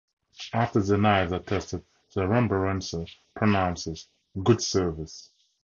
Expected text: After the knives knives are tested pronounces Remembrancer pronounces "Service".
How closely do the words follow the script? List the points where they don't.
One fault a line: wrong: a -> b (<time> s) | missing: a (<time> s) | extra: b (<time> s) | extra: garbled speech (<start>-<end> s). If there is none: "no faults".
missing: knives (1.3 s)
wrong: pronounces -> the (2.1 s)
extra: Good (4.4 s)